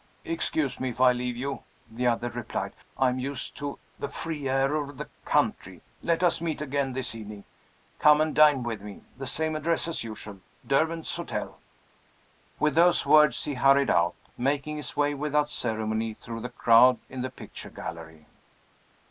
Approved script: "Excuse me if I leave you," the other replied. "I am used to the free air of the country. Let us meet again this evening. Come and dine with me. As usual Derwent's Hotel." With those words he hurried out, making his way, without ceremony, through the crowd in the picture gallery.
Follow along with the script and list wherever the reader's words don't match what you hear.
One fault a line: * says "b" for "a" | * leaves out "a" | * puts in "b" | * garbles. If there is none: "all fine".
* puts in "The same address"